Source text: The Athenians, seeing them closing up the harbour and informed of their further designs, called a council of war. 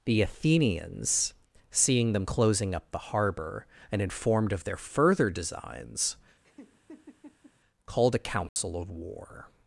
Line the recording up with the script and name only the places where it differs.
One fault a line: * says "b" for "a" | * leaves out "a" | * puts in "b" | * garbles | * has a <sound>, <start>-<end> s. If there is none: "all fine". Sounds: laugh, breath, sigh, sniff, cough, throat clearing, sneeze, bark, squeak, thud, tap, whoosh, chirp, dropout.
* has a laugh, 6.4-7.5 s
* has a dropout, 8.5-8.6 s